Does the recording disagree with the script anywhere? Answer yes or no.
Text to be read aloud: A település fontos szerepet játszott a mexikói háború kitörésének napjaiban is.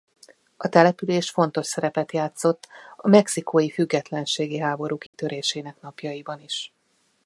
yes